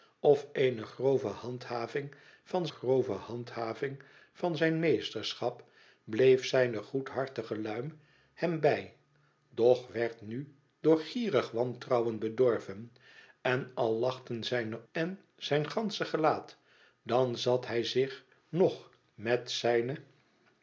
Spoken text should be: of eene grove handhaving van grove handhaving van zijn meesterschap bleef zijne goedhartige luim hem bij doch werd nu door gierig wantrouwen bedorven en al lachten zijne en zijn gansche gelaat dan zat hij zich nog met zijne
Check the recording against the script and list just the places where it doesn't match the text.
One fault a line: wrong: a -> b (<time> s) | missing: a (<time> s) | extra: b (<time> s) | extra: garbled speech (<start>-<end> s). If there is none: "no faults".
no faults